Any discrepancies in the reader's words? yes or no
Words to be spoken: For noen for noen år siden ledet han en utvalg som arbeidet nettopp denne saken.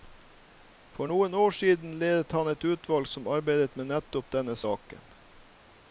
yes